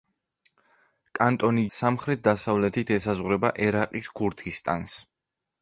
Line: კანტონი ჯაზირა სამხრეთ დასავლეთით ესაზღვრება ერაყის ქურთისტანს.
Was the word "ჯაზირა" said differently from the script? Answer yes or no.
yes